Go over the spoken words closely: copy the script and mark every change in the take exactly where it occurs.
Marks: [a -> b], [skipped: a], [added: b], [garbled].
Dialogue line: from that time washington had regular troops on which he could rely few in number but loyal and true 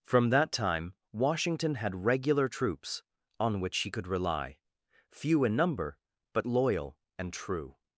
from that time washington had regular troops on which he could rely few in number but loyal and true